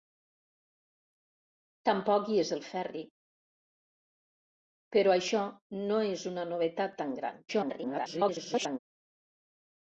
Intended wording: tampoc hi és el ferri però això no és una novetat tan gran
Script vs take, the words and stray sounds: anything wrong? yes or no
yes